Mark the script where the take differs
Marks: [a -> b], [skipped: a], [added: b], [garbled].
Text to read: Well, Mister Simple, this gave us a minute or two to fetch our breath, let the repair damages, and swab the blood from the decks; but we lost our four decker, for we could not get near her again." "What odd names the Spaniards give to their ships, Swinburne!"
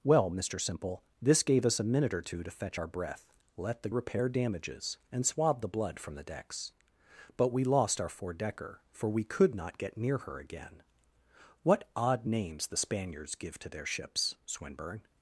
Well, Mister Simple, this gave us a minute or two to fetch our breath, let the repair damages, and swab the blood from the decks; but we lost our four decker, for we could not get near her again." "What odd names the Spaniards give to their ships, Swinburne!"